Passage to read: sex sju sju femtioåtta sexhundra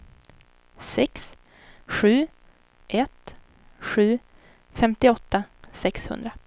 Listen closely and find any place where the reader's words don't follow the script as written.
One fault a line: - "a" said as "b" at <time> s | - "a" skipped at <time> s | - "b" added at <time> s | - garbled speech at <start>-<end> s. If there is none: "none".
- "ett" added at 2.9 s